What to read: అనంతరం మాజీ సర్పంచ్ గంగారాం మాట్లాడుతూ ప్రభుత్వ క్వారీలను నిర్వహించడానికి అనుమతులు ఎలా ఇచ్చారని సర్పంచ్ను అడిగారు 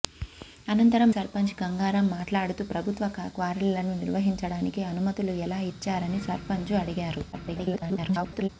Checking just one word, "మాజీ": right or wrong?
wrong